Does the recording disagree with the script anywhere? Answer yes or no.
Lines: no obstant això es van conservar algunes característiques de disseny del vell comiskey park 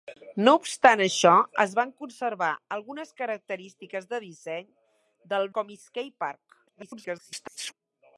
yes